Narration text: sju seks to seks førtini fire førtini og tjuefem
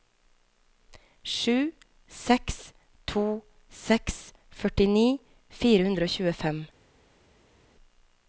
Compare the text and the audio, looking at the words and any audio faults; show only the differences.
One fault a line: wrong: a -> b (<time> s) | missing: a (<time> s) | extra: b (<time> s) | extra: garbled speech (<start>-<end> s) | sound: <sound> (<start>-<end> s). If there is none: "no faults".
wrong: førtini -> hundre (5.9 s)